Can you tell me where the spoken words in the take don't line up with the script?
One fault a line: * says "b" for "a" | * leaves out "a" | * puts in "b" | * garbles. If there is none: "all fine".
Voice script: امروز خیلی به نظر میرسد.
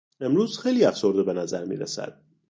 * puts in "افسرده"